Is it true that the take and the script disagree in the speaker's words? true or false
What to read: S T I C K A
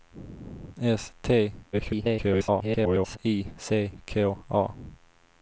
true